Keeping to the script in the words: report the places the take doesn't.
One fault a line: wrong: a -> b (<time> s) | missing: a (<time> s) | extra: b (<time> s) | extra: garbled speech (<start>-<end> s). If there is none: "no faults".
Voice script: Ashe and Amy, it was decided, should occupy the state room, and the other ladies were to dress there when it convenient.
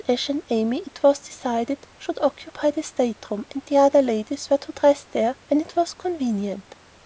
extra: was (5.7 s)